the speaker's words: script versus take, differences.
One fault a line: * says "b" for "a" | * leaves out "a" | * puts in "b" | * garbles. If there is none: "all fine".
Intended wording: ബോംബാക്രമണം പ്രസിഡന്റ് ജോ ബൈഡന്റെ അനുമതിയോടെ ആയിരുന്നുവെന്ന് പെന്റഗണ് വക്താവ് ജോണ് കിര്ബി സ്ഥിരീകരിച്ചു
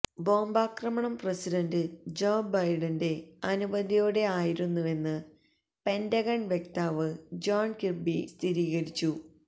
all fine